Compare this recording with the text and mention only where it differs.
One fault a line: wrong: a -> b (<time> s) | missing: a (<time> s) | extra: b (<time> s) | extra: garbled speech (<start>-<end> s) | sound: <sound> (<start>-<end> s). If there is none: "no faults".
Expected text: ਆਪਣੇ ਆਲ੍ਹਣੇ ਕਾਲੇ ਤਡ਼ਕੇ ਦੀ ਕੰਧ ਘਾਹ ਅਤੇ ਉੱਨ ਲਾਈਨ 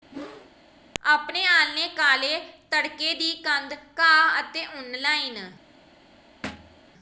sound: whoosh (0.1-0.5 s)
sound: thud (6.4-6.8 s)